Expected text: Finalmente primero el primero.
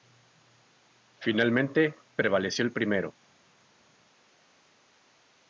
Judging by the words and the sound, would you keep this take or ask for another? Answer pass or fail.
fail